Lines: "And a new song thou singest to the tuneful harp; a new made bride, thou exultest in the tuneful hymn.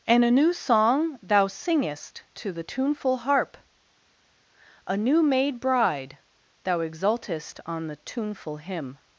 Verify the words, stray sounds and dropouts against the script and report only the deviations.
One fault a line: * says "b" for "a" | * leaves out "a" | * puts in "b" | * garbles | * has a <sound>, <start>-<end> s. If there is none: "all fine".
* says "on" for "in"